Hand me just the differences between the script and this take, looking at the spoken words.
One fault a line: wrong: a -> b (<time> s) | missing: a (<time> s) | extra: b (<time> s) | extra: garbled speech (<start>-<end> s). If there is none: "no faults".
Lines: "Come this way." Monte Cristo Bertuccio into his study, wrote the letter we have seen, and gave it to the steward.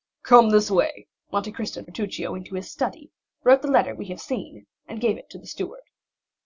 no faults